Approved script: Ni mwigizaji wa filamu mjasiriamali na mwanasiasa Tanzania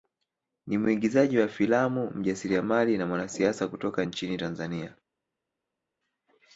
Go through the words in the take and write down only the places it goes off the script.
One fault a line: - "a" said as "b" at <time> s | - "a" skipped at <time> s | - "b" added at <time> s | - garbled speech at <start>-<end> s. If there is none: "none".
- "kutoka nchini" added at 3.7 s